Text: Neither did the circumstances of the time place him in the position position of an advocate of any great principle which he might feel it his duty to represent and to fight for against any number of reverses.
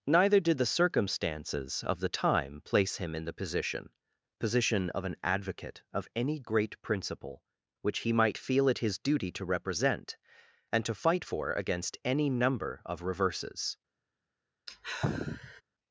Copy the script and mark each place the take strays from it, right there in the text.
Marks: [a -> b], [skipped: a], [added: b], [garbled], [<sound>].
Neither did the circumstances of the time place him in the position position of an advocate of any great principle which he might feel it his duty to represent and to fight for against any number of reverses. [sigh]